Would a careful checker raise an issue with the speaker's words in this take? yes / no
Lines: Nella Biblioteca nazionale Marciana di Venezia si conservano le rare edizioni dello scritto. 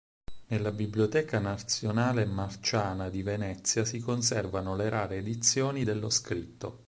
no